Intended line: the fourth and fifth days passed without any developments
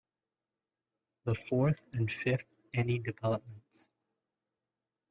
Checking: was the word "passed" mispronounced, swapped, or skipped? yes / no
yes